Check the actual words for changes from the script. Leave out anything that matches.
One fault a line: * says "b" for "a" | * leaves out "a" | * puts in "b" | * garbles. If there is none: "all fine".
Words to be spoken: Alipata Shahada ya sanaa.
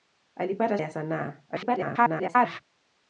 * leaves out "Shahada"
* garbles